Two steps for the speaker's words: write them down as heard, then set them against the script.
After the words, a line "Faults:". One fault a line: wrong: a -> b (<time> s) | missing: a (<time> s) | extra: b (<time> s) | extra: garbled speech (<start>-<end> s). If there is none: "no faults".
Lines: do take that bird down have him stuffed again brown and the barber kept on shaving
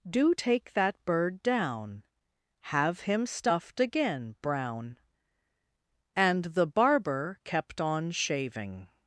do take that bird down have him stuffed again brown and the barber kept on shaving
Faults:
no faults